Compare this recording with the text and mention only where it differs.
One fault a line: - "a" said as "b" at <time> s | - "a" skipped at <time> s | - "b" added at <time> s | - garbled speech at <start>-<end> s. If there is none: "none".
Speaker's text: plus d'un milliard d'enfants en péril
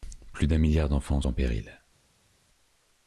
none